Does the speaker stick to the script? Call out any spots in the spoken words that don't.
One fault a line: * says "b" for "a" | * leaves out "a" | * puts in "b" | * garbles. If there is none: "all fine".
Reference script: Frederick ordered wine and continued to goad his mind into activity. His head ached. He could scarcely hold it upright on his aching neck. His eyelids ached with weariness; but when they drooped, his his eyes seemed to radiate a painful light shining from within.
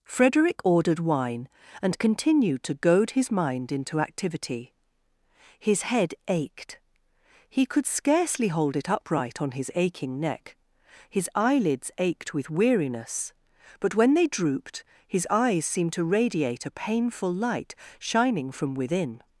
* leaves out "his"